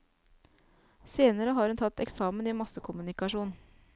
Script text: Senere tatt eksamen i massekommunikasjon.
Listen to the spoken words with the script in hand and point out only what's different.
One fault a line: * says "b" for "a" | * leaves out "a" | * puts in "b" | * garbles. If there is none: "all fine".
* puts in "har hun"